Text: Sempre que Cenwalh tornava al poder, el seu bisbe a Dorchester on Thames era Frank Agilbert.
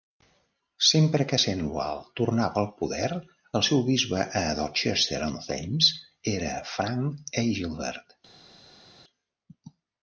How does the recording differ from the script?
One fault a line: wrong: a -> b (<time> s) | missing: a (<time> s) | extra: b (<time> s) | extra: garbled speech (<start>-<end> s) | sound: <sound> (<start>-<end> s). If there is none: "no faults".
no faults